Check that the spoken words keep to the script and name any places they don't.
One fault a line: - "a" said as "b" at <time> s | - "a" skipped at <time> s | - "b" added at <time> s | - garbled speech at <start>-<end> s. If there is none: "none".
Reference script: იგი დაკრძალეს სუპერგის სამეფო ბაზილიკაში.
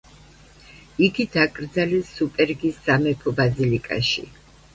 none